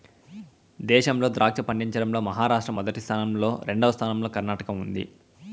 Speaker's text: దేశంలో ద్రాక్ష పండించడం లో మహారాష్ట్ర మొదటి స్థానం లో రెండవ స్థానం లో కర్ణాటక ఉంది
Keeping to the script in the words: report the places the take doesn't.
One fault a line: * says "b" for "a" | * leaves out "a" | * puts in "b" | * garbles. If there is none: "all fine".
all fine